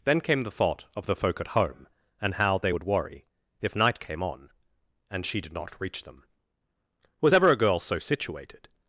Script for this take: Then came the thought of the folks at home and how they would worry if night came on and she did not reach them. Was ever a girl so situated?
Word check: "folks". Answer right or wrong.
wrong